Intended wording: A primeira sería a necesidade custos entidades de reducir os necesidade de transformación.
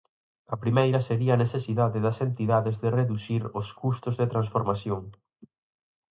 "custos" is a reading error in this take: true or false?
true